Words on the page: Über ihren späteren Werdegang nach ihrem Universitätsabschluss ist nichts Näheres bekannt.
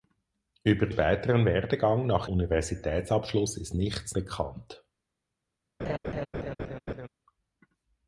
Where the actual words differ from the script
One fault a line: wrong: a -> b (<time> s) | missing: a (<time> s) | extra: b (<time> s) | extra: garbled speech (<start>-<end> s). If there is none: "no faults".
missing: ihren (0.9 s)
missing: ihrem (2.3 s)
missing: Näheres (4.2 s)